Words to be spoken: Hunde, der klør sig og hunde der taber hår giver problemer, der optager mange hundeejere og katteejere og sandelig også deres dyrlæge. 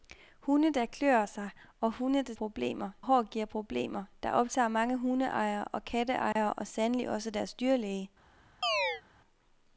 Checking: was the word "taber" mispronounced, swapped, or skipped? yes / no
yes